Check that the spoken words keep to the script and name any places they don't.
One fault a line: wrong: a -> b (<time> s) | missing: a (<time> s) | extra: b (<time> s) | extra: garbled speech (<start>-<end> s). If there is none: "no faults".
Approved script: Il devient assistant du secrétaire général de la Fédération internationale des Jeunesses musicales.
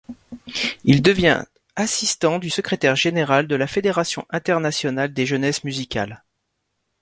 no faults